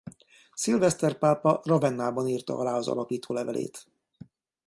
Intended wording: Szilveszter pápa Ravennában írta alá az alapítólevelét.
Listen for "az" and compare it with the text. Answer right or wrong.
right